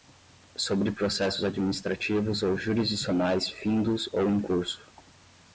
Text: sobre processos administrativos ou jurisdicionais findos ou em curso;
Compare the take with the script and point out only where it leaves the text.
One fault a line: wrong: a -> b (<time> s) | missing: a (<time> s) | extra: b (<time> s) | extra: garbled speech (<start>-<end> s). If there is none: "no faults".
no faults